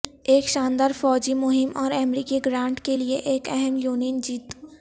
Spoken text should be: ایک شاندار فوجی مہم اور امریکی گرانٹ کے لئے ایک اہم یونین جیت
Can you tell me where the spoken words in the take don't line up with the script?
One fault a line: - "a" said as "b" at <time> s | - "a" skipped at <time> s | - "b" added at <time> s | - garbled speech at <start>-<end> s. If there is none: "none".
none